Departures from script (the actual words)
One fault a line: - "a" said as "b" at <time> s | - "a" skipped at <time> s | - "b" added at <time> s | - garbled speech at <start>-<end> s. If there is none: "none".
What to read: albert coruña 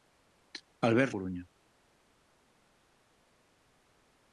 none